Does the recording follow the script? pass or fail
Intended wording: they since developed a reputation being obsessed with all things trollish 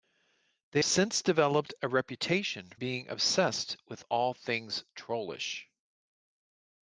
pass